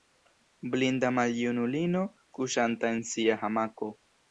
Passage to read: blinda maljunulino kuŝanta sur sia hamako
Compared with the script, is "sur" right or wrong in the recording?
wrong